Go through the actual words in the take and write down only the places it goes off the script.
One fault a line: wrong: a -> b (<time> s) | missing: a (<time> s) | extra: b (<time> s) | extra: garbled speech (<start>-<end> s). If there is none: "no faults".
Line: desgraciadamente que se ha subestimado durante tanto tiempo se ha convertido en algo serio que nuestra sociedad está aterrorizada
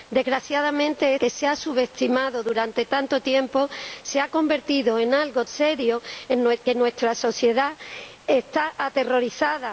no faults